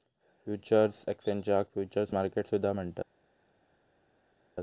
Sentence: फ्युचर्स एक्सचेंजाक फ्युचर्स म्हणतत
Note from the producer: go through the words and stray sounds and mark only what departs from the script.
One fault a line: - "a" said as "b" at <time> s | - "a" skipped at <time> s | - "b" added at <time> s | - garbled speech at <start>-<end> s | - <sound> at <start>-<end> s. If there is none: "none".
- "मार्केट सुद्धा" added at 2.1 s